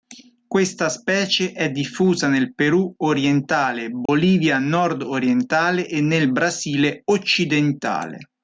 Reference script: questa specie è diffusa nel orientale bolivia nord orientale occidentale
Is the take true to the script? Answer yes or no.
no